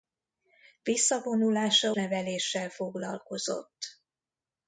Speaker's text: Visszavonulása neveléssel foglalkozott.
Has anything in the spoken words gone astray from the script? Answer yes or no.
no